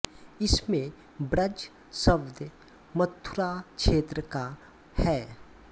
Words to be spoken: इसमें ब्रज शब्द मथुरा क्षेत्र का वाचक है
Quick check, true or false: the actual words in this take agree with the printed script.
false